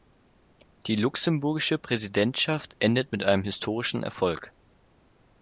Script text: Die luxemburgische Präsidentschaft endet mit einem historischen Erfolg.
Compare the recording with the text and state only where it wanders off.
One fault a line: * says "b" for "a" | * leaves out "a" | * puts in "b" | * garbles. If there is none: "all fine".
all fine